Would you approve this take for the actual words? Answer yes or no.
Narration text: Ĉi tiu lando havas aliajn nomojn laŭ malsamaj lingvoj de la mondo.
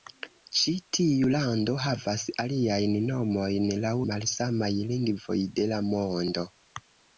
yes